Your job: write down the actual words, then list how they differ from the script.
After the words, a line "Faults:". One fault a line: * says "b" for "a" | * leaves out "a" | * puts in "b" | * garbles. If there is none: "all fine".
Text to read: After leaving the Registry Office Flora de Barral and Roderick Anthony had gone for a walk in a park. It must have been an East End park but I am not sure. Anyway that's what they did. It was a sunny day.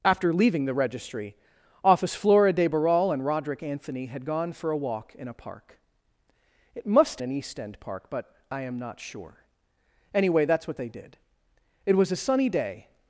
After leaving the Registry Office Flora de Barral and Roderick Anthony had gone for a walk in a park. It must an East End park but I am not sure. Anyway that's what they did. It was a sunny day.
Faults:
* leaves out "have been"